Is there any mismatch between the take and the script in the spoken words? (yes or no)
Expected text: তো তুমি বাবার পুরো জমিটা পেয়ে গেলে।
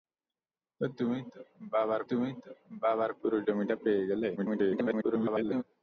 yes